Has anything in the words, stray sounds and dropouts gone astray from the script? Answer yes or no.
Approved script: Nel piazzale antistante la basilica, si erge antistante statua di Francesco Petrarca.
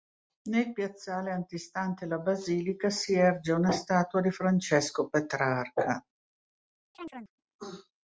yes